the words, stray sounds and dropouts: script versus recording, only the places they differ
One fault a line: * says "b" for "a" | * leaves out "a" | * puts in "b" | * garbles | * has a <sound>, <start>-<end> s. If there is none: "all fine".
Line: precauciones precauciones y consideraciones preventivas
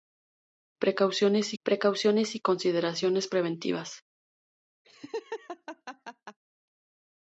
* has a laugh, 4.8-6.4 s